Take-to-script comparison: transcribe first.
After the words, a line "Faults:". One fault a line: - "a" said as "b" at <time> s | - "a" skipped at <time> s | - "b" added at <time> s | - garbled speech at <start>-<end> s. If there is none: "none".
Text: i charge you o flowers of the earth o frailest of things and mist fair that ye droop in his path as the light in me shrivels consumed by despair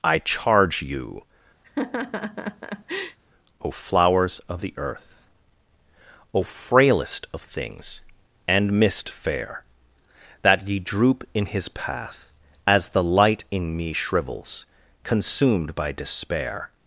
i charge you o flowers of the earth o frailest of things and mist fair that ye droop in his path as the light in me shrivels consumed by despair
Faults:
none